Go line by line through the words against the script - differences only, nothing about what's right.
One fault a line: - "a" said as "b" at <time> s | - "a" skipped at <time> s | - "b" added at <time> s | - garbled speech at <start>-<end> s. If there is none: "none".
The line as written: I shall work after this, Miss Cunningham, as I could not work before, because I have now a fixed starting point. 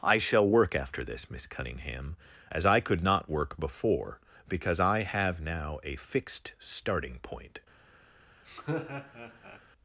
none